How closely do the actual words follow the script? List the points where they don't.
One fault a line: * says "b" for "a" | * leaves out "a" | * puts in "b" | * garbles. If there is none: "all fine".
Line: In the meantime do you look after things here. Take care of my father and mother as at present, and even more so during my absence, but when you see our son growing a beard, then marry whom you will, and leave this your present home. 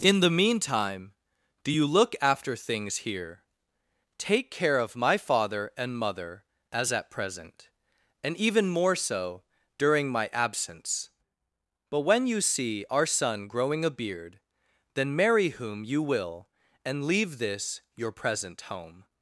all fine